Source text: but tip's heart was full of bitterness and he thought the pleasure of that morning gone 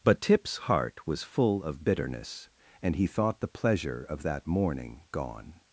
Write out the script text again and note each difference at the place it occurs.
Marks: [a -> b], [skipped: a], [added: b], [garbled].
but tip's heart was full of bitterness and he thought the pleasure of that morning gone